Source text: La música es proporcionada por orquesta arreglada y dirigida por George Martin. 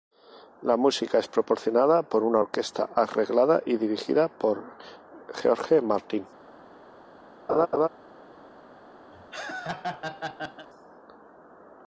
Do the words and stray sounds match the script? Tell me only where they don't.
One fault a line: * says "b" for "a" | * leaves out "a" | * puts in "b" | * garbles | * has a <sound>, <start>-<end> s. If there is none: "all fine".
* puts in "una"
* has a laugh, 7.5-7.9 s
* has a laugh, 9.1-10.7 s